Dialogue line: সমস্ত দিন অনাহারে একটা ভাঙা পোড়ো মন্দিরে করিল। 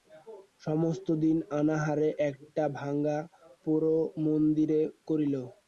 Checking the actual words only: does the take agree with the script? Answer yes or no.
yes